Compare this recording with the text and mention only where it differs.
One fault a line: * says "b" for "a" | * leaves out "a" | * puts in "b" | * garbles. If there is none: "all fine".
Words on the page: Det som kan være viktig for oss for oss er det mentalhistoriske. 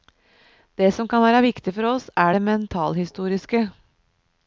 * leaves out "for oss"